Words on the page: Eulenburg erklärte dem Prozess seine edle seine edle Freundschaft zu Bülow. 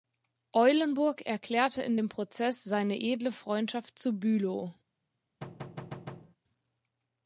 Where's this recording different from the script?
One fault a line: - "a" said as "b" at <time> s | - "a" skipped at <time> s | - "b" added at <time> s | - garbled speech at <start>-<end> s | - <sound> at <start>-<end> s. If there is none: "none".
- "in" added at 1.8 s
- "seine edle" skipped at 3.3 s
- thud at 5.4-6.4 s